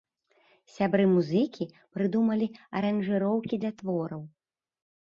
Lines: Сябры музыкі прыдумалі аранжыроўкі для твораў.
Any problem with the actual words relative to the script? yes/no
no